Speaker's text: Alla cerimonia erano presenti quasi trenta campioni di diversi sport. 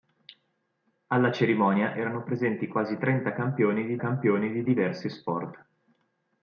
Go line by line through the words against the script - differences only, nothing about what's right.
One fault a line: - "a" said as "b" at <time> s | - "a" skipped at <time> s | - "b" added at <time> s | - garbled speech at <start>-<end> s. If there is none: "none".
- "campioni di" added at 4.0 s